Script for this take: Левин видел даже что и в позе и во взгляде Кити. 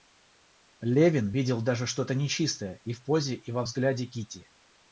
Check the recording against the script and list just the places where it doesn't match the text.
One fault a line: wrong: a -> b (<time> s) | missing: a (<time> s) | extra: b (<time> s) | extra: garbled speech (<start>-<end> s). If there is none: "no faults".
extra: то нечистое (2.0 s)